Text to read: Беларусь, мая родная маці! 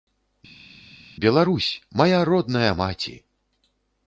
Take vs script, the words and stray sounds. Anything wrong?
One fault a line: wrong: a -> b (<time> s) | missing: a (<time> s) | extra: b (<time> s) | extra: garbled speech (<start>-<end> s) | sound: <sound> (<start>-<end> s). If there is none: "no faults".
no faults